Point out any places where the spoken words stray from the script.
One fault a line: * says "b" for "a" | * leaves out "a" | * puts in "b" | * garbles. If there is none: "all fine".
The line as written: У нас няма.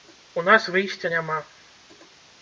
* puts in "выйсця"